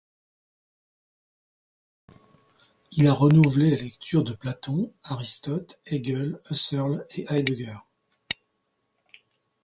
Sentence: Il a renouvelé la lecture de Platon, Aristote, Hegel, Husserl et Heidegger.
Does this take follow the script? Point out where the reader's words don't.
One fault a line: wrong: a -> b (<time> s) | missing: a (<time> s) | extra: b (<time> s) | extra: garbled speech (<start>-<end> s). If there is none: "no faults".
no faults